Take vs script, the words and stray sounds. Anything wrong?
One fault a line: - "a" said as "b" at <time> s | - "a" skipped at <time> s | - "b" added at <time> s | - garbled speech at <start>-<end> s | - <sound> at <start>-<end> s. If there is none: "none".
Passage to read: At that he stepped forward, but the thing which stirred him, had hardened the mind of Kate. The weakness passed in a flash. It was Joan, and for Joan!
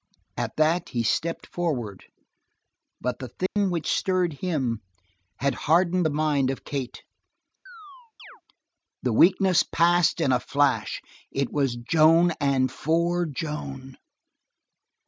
- dropout at 3.5-3.6 s
- chirp at 7.7-8.4 s